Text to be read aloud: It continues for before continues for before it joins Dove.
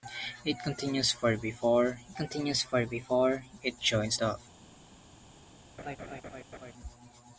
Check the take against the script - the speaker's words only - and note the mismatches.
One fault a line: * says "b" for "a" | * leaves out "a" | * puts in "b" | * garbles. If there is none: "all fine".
all fine